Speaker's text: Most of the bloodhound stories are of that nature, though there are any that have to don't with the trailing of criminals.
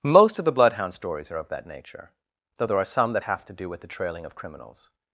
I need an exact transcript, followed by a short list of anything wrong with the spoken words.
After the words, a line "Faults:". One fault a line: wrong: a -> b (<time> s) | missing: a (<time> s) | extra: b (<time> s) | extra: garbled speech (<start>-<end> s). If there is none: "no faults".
Most of the bloodhound stories are of that nature, though there are some that have to do with the trailing of criminals.
Faults:
wrong: any -> some (2.8 s)
wrong: don't -> do (3.5 s)